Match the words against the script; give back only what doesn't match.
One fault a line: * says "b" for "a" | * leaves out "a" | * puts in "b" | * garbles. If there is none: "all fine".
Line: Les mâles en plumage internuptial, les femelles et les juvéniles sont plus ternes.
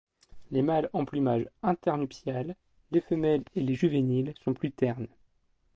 all fine